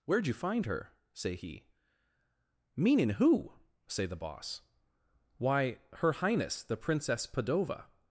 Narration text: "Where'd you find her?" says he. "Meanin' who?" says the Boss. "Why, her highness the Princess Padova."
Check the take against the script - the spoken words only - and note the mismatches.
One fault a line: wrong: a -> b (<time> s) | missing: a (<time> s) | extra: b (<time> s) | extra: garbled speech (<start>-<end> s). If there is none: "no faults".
wrong: says -> say (1.1 s)
wrong: says -> say (3.9 s)